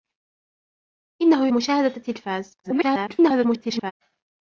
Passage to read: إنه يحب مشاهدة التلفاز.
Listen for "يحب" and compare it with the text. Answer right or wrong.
wrong